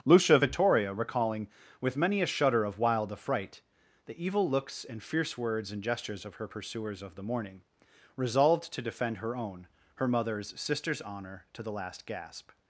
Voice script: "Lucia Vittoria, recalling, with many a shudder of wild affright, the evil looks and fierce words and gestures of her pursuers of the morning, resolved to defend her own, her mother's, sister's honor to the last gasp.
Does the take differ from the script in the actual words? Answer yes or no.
no